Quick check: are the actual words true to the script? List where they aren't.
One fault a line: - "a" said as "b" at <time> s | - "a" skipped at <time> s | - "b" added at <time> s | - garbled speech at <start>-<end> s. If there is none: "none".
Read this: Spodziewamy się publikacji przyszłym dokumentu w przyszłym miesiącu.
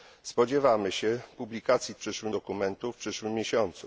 none